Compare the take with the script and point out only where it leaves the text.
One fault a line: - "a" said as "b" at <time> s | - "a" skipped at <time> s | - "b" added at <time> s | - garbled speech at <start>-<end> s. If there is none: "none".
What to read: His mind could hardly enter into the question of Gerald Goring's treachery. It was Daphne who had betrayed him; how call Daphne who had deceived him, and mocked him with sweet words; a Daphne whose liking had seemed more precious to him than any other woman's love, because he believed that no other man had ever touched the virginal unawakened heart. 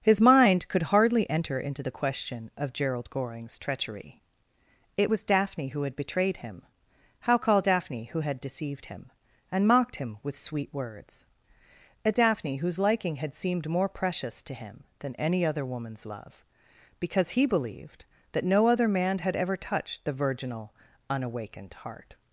none